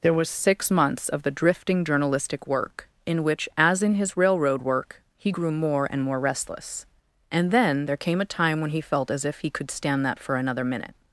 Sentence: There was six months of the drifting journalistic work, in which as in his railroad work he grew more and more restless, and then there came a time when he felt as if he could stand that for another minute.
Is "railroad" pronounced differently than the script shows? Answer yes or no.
no